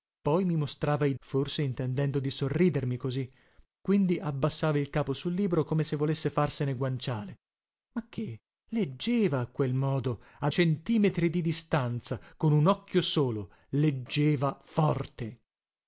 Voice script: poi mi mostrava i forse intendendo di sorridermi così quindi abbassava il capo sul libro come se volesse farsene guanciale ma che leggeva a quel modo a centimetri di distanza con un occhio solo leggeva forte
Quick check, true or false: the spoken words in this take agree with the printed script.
true